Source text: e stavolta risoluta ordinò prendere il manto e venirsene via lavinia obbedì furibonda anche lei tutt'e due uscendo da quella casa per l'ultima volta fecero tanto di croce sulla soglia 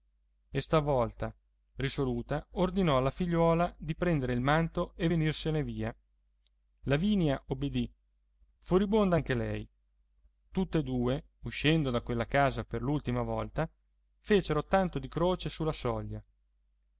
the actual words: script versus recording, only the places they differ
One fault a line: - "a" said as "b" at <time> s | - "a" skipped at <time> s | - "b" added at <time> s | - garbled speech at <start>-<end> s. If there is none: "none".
- "alla figliuola di" added at 3.0 s